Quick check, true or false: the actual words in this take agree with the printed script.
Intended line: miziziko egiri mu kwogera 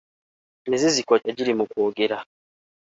true